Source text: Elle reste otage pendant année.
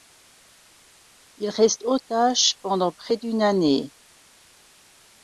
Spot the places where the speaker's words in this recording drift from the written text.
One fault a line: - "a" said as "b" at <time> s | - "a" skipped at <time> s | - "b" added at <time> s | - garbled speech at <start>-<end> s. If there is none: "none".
- "Elle" said as "Il" at 1.4 s
- "près d'une" added at 2.9 s